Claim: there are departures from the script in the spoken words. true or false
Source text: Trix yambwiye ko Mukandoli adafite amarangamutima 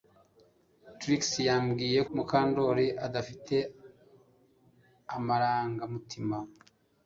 true